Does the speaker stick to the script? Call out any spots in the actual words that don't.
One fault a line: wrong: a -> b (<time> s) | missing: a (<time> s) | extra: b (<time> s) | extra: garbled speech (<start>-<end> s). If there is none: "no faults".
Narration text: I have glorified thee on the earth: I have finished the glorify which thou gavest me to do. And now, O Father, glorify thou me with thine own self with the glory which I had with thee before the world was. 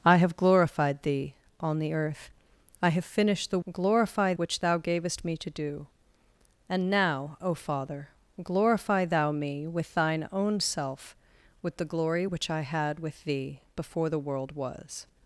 no faults